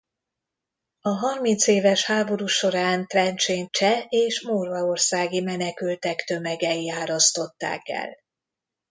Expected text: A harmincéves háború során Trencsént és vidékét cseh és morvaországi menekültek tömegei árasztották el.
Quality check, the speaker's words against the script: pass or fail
fail